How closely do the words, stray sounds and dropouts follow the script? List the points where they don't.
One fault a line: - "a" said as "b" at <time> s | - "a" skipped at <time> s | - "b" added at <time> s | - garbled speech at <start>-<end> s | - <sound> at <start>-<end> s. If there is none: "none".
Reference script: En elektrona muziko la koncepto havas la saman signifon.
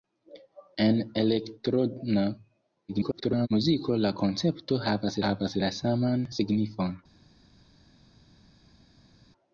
- garbled speech at 2.9-3.5 s
- "havas" added at 5.3 s